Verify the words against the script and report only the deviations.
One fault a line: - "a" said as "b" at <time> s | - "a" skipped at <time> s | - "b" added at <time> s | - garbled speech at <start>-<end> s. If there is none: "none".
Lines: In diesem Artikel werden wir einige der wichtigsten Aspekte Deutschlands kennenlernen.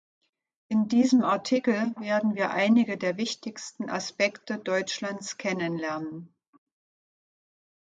none